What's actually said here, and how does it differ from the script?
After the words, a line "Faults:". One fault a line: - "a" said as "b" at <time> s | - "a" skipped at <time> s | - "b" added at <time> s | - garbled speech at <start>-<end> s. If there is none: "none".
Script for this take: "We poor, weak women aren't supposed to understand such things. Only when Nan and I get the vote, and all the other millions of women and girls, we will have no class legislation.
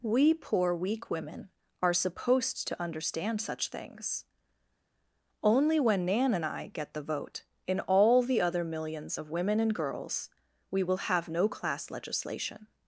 "We poor, weak women are supposed to understand such things. Only when Nan and I get the vote, in all the other millions of women and girls, we will have no class legislation.
Faults:
- "aren't" said as "are" at 1.8 s
- "and" said as "in" at 7.7 s